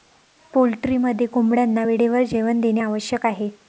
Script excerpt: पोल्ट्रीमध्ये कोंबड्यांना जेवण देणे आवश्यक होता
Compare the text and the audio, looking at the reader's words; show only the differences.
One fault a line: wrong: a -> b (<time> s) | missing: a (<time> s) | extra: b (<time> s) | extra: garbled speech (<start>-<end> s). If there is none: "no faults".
extra: वेळेवर (1.8 s)
wrong: होता -> आहे (3.3 s)